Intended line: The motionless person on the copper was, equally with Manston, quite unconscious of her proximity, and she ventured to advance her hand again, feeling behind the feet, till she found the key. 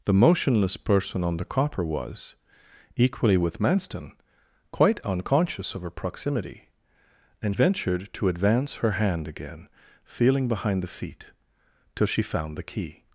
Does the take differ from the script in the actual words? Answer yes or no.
yes